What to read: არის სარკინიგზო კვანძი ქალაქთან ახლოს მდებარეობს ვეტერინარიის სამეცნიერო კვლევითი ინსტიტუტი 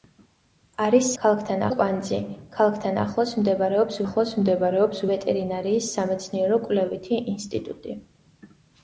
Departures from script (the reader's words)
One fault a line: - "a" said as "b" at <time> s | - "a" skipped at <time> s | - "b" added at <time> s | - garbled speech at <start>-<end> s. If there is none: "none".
- "სარკინიგზო" said as "ქალაქთან" at 1.2 s
- "ახლოს მდებარეობს" added at 4.0 s